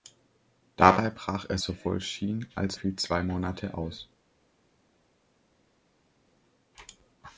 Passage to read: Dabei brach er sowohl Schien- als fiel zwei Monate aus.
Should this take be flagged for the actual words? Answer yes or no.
no